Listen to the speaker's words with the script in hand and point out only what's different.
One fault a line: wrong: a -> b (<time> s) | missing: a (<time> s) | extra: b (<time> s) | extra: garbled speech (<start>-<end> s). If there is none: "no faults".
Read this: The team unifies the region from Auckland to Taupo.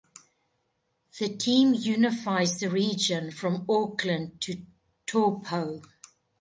no faults